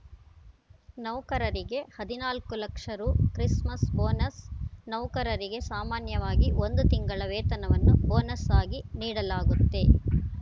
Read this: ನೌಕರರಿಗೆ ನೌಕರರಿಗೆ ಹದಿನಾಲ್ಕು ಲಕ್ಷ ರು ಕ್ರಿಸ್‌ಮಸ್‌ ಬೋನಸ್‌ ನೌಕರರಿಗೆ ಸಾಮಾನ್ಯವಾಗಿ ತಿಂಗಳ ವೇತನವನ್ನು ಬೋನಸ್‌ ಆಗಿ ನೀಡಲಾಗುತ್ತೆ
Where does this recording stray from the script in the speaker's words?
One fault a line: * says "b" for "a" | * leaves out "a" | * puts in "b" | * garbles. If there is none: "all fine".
* leaves out "ನೌಕರರಿಗೆ"
* puts in "ಒಂದು"